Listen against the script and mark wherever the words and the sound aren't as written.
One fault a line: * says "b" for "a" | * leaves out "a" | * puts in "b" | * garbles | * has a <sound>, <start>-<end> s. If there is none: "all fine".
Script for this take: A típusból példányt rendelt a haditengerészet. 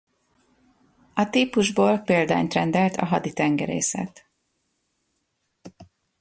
all fine